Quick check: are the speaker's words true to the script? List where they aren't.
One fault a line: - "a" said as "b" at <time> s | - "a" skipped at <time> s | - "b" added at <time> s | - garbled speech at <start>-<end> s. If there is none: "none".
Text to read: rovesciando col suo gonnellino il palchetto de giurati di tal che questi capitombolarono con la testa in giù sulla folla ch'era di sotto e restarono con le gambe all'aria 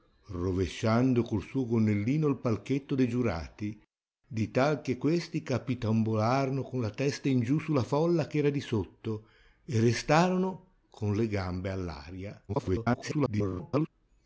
- garbled speech at 12.5-13.9 s